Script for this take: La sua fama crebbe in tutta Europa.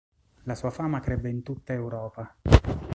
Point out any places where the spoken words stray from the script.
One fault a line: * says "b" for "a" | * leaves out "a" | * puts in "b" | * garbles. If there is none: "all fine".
all fine